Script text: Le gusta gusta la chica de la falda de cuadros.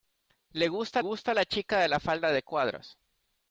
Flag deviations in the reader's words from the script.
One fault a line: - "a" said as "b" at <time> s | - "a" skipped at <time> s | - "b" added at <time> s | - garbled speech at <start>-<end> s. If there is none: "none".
none